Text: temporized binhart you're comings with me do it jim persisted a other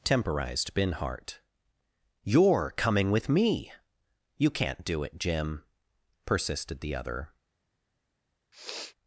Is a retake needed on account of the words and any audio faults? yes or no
yes